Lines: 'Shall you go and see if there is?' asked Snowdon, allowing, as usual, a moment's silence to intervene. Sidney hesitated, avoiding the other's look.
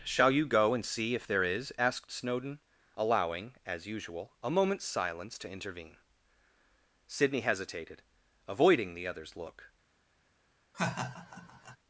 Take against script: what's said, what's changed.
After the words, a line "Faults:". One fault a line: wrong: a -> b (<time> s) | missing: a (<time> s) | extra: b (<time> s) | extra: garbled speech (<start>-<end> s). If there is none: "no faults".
'Shall you go and see if there is?' asked Snowdon, allowing, as usual, a moment's silence to intervene. Sidney hesitated, avoiding the other's look.
Faults:
no faults